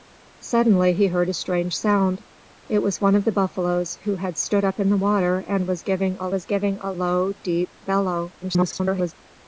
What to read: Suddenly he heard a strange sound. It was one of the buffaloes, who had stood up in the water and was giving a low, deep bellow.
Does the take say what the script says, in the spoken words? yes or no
no